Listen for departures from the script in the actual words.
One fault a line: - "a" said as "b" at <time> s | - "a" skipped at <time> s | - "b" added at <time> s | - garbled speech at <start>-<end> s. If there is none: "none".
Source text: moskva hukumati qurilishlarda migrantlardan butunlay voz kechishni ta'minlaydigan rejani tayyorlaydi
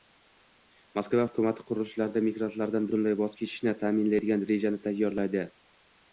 none